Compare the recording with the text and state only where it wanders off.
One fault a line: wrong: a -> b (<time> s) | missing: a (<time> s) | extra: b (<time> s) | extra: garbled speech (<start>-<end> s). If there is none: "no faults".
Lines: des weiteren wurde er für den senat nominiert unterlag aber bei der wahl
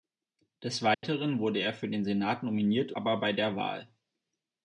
missing: unterlag (2.9 s)